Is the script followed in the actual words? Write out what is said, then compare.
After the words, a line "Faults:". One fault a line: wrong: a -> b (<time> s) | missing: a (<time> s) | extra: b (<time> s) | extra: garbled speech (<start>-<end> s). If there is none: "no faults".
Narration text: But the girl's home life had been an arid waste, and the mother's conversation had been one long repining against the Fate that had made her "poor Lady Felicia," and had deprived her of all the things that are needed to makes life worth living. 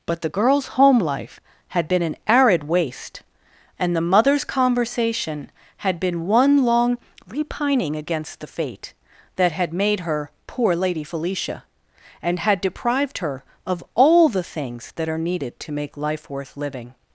But the girl's home life had been an arid waste, and the mother's conversation had been one long repining against the Fate that had made her "poor Lady Felicia," and had deprived her of all the things that are needed to make life worth living.
Faults:
wrong: makes -> make (15.7 s)